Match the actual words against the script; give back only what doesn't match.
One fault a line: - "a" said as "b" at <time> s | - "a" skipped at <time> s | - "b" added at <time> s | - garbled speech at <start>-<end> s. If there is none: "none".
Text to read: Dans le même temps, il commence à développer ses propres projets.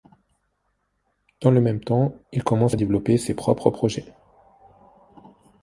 none